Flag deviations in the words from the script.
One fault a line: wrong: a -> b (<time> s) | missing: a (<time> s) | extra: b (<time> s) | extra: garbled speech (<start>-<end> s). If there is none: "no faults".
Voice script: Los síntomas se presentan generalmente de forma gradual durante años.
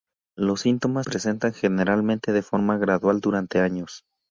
missing: se (1.1 s)